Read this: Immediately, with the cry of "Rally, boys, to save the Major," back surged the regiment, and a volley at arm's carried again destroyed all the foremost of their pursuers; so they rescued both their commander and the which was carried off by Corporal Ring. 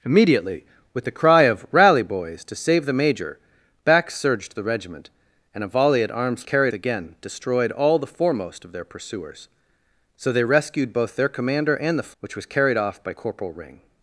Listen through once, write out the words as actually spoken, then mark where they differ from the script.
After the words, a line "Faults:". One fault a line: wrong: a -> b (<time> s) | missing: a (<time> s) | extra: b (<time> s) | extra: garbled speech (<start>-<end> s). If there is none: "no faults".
Immediately, with the cry of "Rally, boys, to save the Major," back surged the regiment, and a volley at arm's carried again destroyed all the foremost of their pursuers; so they rescued both their commander and the which was carried off by Corporal Ring.
Faults:
no faults